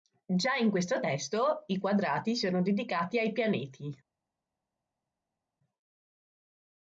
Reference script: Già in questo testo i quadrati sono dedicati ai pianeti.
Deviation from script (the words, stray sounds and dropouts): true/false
false